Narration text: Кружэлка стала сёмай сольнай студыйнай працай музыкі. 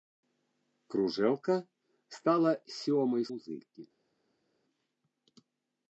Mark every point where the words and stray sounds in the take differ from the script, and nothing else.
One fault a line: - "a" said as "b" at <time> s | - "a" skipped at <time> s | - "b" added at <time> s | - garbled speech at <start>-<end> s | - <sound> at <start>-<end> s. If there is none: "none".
- "сольнай студыйнай працай" skipped at 3.2 s